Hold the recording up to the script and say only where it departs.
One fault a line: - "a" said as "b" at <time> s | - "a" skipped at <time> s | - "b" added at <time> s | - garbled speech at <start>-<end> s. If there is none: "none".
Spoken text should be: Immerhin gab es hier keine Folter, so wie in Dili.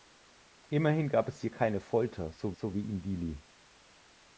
- "so" added at 2.5 s